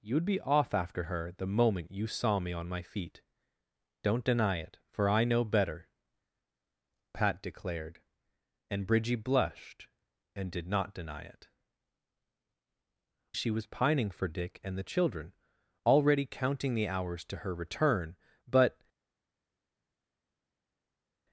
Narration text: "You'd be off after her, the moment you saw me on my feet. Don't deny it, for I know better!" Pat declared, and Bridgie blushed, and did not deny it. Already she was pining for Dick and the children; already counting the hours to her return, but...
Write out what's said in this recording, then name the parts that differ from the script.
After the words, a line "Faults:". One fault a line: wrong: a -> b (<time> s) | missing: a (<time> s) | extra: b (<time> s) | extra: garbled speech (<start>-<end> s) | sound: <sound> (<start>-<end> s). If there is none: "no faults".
"You'd be off after her, the moment you saw me on my feet. Don't deny it, for I know better!" Pat declared, and Bridgie blushed, and did not deny it. She was pining for Dick and the children; already counting the hours to her return, but...
Faults:
missing: Already (11.5 s)